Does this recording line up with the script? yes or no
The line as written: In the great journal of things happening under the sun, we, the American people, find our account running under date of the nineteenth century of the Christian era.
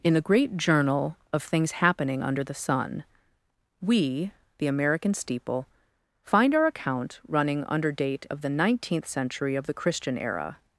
no